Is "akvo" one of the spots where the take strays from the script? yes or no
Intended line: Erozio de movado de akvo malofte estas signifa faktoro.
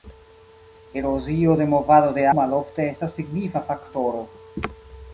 yes